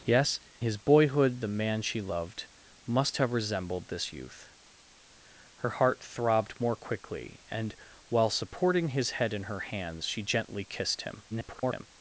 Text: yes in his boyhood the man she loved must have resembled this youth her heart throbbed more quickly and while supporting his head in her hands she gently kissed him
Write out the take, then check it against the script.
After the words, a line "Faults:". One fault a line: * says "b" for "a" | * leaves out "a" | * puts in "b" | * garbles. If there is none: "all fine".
yes his boyhood the man she loved must have resembled this youth her heart throbbed more quickly and while supporting his head in her hands she gently kissed him [garbled]
Faults:
* leaves out "in"
* garbles